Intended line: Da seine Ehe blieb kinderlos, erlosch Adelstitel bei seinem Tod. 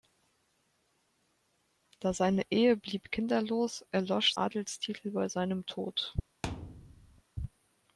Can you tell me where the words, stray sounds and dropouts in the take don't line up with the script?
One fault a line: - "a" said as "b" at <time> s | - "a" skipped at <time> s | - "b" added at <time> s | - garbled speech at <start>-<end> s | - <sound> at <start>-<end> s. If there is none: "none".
- thud at 6.4-7.2 s